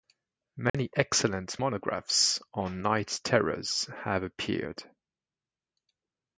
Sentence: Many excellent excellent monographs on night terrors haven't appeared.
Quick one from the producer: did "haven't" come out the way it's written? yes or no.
no